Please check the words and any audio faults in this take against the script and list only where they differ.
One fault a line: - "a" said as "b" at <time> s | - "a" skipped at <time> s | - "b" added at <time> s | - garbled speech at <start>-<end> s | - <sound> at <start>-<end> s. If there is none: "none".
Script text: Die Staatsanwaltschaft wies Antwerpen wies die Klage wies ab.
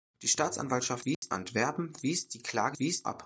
- dropout at 1.1-1.2 s